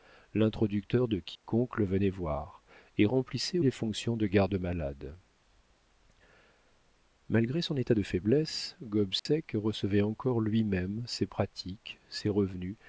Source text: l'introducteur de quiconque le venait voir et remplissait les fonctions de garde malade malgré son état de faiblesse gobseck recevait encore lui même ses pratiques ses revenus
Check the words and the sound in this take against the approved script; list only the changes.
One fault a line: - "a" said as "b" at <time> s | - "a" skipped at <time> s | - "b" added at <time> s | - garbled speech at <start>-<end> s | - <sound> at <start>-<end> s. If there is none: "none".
- dropout at 1.4-1.4 s
- dropout at 9.2-9.3 s